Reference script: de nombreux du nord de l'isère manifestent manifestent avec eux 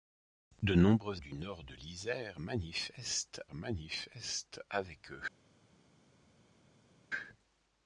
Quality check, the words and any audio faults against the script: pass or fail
pass